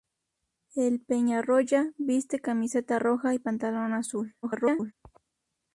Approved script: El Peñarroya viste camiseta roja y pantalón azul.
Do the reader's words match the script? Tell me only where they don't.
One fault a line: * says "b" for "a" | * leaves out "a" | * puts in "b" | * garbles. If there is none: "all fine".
* garbles